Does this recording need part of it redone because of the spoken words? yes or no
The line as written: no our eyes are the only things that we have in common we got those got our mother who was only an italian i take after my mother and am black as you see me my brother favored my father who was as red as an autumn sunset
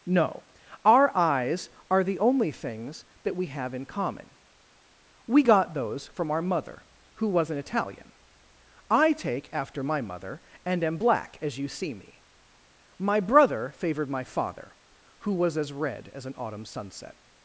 yes